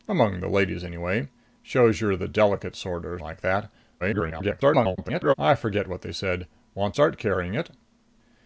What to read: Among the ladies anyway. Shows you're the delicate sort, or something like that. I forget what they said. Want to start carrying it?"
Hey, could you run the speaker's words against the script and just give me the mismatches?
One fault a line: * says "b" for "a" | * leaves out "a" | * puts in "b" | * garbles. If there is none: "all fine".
* leaves out "something"
* garbles
* leaves out "to"